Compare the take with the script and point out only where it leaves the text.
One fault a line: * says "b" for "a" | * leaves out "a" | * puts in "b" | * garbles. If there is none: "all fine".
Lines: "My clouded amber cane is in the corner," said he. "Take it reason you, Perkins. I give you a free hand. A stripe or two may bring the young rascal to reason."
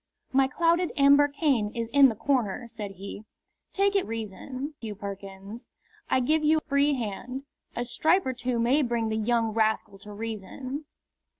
all fine